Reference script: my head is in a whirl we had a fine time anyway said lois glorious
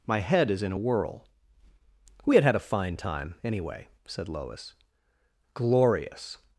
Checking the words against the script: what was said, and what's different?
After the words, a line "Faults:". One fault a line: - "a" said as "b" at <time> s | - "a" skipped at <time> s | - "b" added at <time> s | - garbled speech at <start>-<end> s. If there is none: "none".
my head is in a whirl we had had a fine time anyway said lois glorious
Faults:
- "had" added at 2.4 s